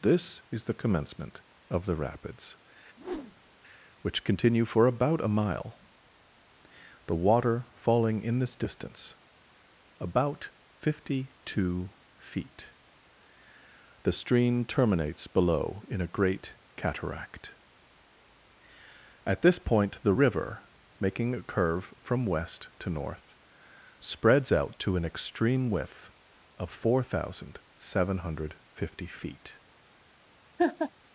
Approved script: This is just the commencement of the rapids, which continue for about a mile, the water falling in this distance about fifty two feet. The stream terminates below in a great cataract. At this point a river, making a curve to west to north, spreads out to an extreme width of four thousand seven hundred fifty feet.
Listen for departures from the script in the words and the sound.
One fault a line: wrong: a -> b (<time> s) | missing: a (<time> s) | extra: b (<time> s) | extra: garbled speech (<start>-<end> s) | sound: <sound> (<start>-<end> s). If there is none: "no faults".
missing: just (0.6 s)
sound: whoosh (3.0-3.5 s)
wrong: a -> the (20.0 s)
wrong: to -> from (22.0 s)
sound: laugh (30.6-30.9 s)